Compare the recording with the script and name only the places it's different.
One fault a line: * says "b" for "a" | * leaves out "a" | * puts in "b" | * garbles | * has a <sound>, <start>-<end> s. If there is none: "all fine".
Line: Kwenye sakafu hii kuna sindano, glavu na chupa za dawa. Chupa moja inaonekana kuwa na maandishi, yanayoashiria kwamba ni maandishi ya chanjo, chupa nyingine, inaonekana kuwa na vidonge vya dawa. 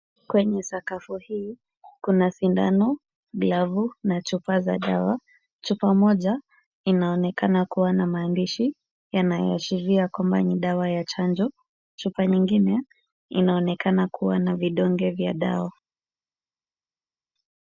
* says "dawa" for "maandishi"